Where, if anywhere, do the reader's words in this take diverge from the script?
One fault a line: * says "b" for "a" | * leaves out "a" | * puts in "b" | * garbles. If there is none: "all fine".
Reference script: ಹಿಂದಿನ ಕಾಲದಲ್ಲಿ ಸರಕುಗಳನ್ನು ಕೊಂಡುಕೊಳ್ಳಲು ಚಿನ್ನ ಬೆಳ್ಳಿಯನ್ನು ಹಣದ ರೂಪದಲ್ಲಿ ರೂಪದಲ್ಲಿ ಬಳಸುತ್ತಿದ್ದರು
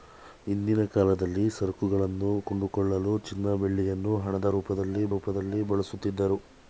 all fine